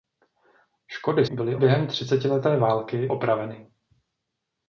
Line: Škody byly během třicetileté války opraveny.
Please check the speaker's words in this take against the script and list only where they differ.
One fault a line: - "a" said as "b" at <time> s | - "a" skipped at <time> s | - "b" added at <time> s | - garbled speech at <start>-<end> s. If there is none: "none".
none